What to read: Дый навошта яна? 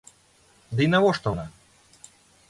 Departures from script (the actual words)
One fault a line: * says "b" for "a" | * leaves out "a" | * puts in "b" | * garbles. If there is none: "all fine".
all fine